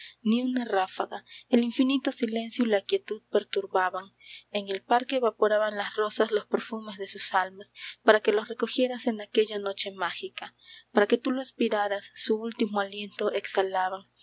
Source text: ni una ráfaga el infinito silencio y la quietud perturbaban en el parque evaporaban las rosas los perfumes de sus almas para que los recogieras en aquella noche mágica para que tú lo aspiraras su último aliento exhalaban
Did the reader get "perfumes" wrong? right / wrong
right